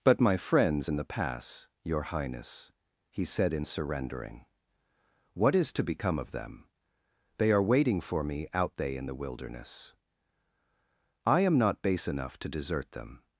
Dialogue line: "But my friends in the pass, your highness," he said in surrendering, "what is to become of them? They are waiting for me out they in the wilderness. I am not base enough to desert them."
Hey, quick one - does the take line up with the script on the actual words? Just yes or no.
yes